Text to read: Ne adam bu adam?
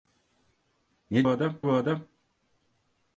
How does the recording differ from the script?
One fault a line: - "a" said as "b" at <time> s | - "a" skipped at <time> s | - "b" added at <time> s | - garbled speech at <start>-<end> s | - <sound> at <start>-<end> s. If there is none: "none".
none